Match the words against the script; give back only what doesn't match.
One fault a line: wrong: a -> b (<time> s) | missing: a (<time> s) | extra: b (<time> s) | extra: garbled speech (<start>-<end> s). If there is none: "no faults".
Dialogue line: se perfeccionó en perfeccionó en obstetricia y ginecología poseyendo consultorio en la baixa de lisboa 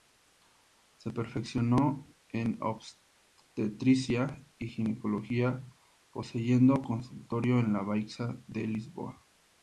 missing: perfeccionó en (2.6 s)